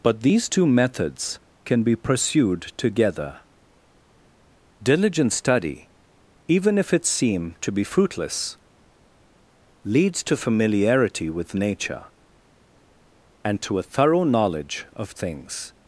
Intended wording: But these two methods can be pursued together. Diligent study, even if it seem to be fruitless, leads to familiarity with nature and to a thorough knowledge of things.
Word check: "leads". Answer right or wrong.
right